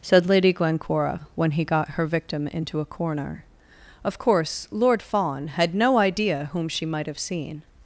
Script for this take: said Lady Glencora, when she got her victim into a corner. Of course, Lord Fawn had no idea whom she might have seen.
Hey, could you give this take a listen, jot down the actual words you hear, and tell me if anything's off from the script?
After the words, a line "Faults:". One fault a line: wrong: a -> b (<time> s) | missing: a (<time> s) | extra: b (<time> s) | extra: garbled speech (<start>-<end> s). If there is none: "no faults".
said Lady Glencora, when he got her victim into a corner. Of course, Lord Fawn had no idea whom she might have seen.
Faults:
wrong: she -> he (1.5 s)